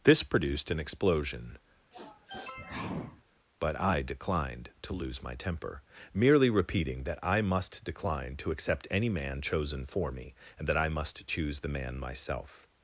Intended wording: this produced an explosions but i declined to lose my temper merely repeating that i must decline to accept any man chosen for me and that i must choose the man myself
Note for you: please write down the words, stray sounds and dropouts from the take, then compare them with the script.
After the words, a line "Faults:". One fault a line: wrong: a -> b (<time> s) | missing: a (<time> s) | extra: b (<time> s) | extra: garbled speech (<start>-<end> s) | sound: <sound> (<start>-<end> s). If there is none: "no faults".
this produced an explosion but i declined to lose my temper merely repeating that i must decline to accept any man chosen for me and that i must choose the man myself
Faults:
wrong: explosions -> explosion (0.8 s)
sound: sniff (1.9-3.2 s)